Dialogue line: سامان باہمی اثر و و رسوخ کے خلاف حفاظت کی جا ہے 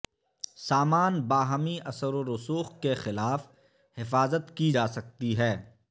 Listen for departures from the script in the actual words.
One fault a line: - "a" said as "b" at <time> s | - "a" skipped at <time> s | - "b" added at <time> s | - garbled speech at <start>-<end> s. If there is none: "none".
- "و" skipped at 2.2 s
- "سکتی" added at 4.9 s